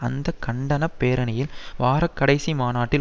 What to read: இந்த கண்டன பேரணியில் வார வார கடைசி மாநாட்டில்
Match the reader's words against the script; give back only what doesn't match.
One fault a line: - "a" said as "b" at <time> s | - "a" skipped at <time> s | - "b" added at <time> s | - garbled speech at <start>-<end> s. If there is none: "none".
- "இந்த" said as "அந்த" at 0.0 s
- "வார" skipped at 2.1 s